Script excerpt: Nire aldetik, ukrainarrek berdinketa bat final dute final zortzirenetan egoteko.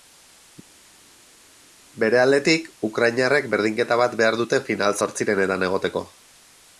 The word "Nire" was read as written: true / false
false